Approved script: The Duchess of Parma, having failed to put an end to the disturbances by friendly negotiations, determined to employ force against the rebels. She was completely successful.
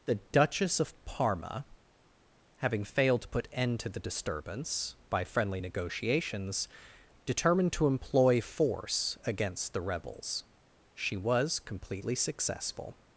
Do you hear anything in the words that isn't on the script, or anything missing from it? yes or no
yes